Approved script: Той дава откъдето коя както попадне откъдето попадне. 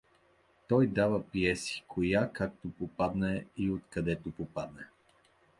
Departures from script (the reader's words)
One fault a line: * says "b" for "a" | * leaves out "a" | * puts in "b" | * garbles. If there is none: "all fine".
* says "пиеси" for "откъдето"
* puts in "и"